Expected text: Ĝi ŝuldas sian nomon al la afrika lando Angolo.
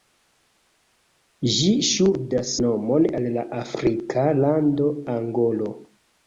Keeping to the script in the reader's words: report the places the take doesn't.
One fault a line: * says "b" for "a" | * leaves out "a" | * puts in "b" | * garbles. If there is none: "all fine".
* leaves out "sian"